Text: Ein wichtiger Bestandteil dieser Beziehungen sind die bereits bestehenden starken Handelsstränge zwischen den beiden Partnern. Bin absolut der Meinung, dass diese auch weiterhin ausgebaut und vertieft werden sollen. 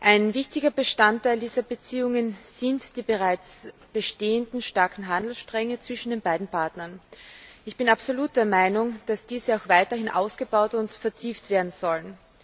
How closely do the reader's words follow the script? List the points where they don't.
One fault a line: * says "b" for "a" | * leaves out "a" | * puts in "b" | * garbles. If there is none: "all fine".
* puts in "Ich"